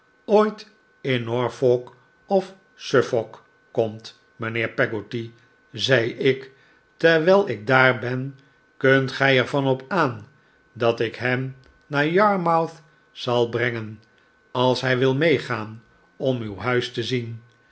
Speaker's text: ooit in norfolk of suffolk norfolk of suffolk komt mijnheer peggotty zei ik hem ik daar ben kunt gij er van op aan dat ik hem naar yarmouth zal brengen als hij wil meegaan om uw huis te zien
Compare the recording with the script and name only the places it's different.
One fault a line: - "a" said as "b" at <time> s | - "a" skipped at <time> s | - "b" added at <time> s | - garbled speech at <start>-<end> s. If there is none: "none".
- "norfolk of suffolk" skipped at 3.4 s
- "hem" said as "terwijl" at 7.0 s